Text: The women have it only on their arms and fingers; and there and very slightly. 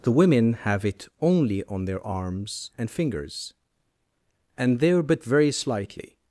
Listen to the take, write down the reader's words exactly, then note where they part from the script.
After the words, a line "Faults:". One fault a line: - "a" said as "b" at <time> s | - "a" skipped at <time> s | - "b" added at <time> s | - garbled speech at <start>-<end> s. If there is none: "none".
The women have it only on their arms and fingers; and there but very slightly.
Faults:
- "and" said as "but" at 5.0 s